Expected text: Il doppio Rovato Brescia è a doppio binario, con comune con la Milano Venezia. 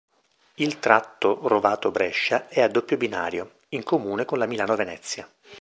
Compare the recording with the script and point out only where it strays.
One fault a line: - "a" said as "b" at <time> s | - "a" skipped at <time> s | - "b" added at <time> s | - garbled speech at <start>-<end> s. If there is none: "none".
- "doppio" said as "tratto" at 0.8 s
- "con" said as "in" at 3.7 s